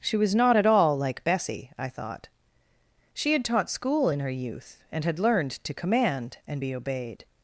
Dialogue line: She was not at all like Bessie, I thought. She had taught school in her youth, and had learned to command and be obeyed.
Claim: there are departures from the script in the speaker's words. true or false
false